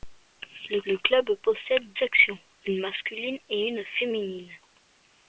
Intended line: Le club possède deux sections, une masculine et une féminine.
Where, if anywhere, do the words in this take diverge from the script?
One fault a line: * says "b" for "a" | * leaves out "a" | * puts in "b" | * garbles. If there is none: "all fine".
* puts in "le"
* leaves out "deux"